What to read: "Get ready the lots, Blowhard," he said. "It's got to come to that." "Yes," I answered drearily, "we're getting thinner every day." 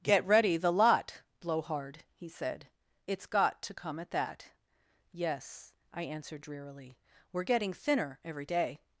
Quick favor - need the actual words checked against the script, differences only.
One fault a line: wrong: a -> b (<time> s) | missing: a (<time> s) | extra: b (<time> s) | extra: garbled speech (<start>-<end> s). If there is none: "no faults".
wrong: lots -> lot (0.7 s)
wrong: to -> at (4.0 s)